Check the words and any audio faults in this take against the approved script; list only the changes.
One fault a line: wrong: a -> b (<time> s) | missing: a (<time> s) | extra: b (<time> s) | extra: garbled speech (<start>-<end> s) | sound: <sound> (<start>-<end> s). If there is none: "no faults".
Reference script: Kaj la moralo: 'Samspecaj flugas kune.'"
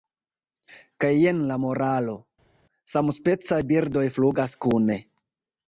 extra: jen (1.2 s)
extra: birdoj (3.7 s)